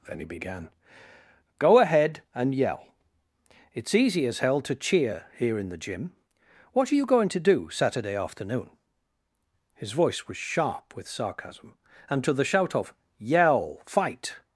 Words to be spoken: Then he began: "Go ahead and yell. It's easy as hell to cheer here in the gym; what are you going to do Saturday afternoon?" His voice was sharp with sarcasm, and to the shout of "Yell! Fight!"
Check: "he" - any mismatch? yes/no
no